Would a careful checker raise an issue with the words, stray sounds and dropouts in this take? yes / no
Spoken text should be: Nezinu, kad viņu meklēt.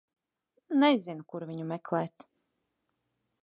yes